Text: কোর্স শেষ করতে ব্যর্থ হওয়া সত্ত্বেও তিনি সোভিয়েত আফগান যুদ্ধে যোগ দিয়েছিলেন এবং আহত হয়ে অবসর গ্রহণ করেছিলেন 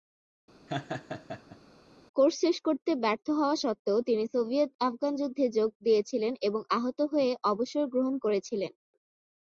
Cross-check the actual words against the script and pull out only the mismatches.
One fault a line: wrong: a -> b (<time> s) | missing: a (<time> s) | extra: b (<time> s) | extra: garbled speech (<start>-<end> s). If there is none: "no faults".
no faults